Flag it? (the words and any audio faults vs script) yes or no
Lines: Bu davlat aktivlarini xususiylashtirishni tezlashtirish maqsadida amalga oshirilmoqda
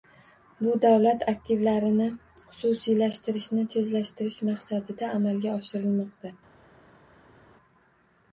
no